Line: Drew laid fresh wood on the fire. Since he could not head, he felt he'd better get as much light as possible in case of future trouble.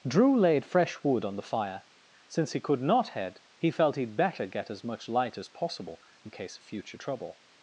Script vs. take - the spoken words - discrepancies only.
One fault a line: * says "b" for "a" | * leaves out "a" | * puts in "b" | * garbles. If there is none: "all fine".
all fine